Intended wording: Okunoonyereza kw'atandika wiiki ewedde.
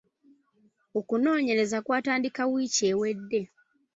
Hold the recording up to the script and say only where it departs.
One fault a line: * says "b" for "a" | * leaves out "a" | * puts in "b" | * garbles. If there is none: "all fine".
all fine